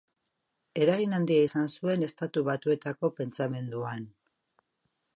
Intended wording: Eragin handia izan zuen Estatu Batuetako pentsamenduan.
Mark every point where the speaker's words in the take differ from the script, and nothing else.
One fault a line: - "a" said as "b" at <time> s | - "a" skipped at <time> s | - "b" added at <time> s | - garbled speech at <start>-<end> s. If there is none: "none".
none